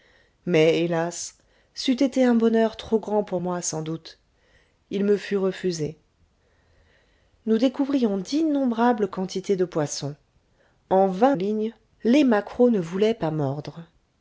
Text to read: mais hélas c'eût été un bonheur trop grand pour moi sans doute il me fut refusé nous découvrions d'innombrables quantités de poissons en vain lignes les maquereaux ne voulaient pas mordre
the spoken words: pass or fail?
pass